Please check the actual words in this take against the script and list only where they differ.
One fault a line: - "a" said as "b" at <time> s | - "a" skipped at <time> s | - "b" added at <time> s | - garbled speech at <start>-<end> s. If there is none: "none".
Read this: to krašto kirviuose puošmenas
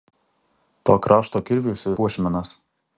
none